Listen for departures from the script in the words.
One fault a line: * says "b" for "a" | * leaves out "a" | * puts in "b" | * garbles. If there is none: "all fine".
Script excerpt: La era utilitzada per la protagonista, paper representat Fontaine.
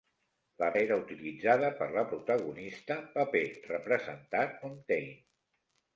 all fine